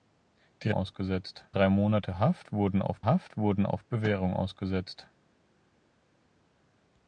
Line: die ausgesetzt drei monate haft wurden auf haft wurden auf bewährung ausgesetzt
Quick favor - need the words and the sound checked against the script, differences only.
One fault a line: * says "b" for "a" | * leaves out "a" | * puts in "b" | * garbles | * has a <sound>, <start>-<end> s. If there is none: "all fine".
all fine